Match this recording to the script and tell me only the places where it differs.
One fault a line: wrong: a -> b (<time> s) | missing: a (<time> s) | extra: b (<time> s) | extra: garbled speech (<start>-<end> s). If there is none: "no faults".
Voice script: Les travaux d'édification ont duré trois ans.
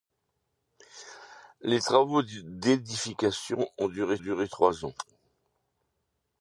extra: duré (4.2 s)